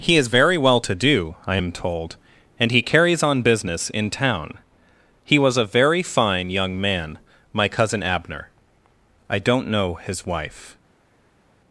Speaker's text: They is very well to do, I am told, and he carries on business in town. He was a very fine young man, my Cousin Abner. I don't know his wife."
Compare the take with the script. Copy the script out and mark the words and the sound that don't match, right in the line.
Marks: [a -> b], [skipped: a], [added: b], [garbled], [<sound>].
[They -> He] is very well to do, I am told, and he carries on business in town. He was a very fine young man, my Cousin Abner. I don't know his wife."